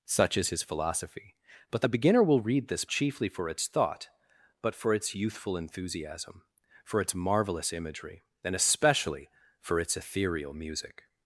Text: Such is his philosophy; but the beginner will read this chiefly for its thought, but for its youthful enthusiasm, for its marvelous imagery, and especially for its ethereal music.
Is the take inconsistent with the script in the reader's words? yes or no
no